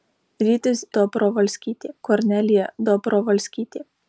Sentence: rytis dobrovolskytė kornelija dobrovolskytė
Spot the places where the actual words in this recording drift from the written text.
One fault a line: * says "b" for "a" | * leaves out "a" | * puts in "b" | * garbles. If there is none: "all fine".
all fine